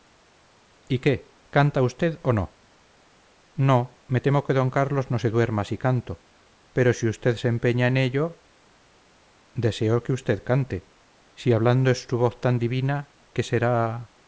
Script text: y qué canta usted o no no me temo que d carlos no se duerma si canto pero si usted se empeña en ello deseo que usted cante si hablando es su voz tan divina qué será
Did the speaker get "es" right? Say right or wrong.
right